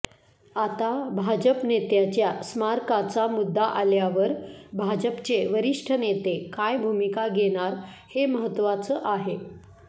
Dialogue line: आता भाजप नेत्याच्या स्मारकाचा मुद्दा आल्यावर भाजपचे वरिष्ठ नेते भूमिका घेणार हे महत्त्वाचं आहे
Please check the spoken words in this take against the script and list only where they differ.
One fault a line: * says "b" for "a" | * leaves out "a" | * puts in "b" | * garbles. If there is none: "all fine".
* puts in "काय"